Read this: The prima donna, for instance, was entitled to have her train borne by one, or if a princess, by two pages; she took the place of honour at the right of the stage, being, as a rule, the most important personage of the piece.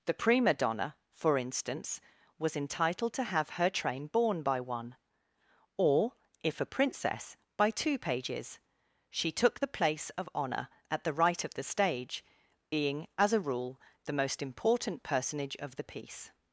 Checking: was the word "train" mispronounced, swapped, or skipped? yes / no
no